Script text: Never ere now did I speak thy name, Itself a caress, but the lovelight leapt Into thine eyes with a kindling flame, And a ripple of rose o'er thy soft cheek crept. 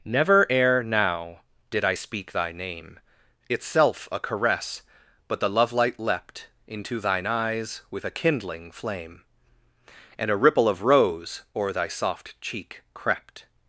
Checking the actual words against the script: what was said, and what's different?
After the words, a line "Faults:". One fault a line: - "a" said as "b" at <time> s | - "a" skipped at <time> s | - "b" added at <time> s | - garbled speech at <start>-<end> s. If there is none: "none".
Never ere now did I speak thy name, Itself a caress, but the lovelight leapt Into thine eyes with a kindling flame, And a ripple of rose o'er thy soft cheek crept.
Faults:
none